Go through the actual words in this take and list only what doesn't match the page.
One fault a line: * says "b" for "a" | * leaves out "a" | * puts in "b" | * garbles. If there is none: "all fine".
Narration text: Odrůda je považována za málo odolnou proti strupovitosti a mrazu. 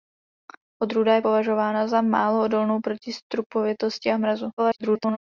* garbles